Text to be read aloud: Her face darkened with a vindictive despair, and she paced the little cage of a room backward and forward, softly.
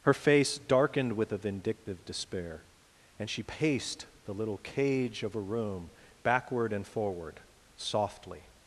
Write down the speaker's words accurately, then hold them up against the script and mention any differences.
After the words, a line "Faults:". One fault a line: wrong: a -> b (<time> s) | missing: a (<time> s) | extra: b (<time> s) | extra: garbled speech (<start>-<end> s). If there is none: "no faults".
Her face darkened with a vindictive despair, and she paced the little cage of a room backward and forward, softly.
Faults:
no faults